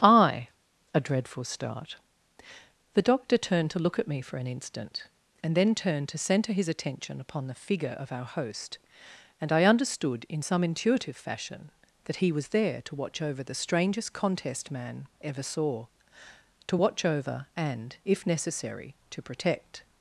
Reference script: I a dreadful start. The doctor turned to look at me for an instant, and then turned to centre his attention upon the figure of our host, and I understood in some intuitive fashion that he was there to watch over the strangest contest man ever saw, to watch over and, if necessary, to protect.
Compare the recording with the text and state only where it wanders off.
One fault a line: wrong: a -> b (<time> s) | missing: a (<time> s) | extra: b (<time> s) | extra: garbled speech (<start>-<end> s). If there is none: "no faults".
no faults